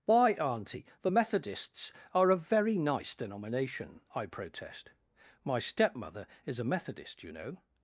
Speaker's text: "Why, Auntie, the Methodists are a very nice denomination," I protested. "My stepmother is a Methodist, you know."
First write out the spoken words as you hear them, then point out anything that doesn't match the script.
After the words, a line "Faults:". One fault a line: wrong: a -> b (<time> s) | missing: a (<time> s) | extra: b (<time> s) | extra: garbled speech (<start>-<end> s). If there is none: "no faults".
"Why, Auntie, the Methodists are a very nice denomination," I protest. "My stepmother is a Methodist, you know."
Faults:
wrong: protested -> protest (4.3 s)